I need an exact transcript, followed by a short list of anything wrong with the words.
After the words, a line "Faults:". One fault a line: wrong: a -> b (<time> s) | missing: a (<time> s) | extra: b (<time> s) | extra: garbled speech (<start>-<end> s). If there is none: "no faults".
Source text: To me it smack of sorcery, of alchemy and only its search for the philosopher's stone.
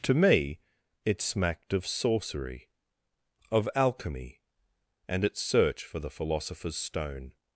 To me it smacked of sorcery, of alchemy and its search for the philosopher's stone.
Faults:
wrong: smack -> smacked (1.2 s)
missing: only (5.2 s)